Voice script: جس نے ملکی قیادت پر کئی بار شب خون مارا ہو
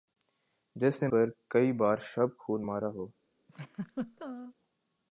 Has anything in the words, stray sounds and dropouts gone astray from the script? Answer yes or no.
yes